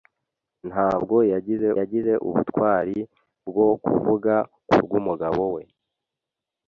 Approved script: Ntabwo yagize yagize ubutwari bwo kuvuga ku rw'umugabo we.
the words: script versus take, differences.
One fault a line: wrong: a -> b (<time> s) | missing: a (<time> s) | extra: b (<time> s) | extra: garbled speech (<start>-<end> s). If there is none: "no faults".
no faults